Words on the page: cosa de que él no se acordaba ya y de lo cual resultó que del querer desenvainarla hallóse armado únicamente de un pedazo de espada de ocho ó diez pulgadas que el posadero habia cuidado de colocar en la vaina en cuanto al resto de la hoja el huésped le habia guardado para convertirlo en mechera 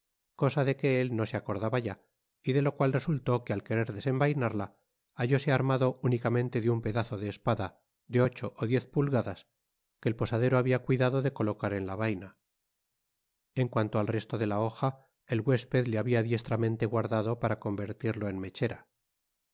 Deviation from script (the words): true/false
true